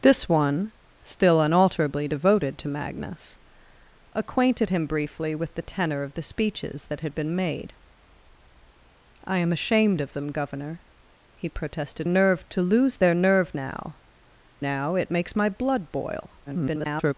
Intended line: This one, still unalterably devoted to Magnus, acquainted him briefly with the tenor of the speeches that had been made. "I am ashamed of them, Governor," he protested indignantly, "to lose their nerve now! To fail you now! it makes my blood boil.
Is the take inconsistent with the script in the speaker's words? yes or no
yes